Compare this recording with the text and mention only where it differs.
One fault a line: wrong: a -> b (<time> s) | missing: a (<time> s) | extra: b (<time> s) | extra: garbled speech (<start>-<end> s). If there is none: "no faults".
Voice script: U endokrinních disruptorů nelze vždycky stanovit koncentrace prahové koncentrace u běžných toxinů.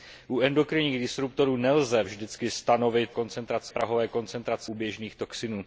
no faults